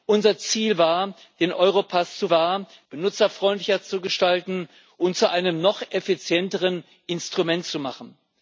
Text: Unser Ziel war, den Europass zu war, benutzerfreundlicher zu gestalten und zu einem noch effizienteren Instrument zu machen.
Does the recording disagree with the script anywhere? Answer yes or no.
no